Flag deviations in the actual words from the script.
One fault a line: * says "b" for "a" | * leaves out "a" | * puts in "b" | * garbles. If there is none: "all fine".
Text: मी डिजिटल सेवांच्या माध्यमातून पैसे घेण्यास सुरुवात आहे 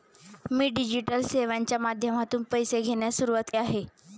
all fine